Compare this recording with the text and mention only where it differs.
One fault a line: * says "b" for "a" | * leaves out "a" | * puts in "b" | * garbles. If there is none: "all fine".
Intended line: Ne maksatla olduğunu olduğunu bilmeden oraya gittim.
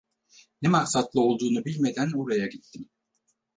* leaves out "olduğunu"